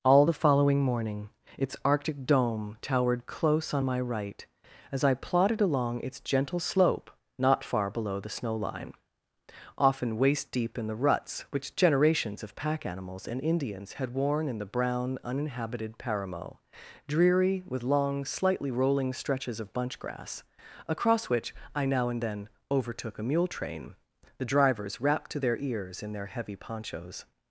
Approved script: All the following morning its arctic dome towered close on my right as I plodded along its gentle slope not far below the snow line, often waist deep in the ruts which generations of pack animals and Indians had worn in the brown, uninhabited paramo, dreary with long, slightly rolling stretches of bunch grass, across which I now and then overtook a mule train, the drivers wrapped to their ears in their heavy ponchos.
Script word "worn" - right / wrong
right